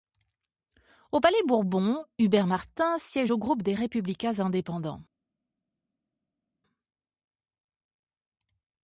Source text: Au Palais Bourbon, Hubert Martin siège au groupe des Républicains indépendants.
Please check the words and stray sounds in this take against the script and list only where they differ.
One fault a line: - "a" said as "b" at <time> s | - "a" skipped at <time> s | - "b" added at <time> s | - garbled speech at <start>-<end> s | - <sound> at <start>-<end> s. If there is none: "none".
none